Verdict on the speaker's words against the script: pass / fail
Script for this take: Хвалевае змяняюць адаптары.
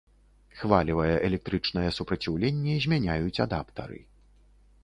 fail